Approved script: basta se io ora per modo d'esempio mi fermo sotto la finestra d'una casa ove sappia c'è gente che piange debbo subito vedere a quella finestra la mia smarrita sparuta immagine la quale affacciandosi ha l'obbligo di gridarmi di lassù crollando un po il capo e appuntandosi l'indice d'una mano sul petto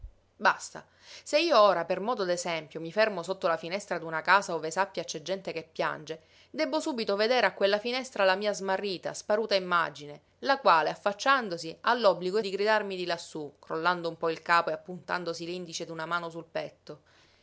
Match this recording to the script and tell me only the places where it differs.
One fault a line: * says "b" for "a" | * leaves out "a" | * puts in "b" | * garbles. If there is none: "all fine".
all fine